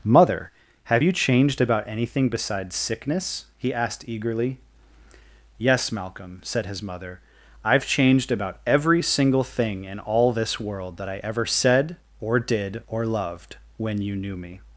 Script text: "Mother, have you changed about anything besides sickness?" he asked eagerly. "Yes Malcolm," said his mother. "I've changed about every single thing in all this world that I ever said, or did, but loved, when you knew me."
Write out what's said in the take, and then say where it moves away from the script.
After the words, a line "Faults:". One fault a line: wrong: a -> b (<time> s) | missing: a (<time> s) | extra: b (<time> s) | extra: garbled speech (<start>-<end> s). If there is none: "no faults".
"Mother, have you changed about anything besides sickness?" he asked eagerly. "Yes Malcolm," said his mother. "I've changed about every single thing in all this world that I ever said, or did, or loved, when you knew me."
Faults:
wrong: but -> or (12.9 s)